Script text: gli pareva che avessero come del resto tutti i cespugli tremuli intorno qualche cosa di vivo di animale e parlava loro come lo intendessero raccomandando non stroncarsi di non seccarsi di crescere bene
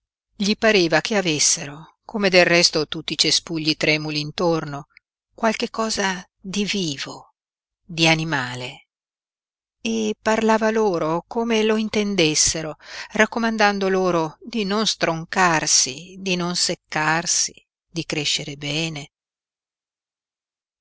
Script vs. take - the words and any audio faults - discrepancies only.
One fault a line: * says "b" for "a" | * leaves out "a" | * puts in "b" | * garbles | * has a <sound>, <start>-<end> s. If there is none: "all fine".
* puts in "loro di"